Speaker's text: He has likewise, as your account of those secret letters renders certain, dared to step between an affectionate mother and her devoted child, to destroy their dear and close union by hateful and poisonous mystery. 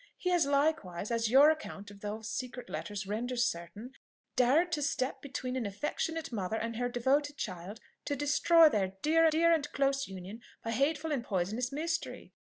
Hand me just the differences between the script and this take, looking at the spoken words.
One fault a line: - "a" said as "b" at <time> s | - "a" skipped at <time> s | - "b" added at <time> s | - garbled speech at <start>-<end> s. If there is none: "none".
- "dear" added at 9.3 s